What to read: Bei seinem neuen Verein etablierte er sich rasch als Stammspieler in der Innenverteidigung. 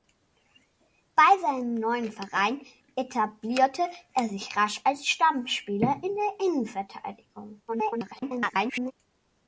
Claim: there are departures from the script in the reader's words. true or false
true